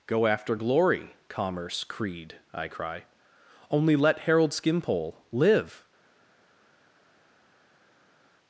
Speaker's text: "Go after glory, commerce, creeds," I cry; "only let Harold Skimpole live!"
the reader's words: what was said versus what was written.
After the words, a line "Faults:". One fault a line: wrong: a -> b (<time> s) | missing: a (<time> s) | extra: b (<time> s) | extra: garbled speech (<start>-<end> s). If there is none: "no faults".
"Go after glory, commerce, creed," I cry; "only let Harold Skimpole live!"
Faults:
wrong: creeds -> creed (1.8 s)